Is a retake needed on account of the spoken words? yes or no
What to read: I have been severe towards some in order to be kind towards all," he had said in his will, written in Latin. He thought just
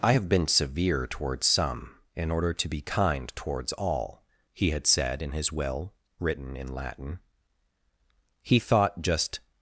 no